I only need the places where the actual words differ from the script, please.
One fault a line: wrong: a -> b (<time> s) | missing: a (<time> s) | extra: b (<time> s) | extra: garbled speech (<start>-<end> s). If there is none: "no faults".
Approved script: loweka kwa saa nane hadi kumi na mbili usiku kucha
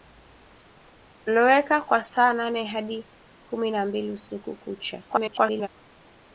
extra: garbled speech (5.1-5.7 s)